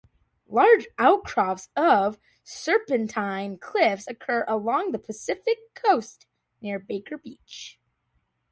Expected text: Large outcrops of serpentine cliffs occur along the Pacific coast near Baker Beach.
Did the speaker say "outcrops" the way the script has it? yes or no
yes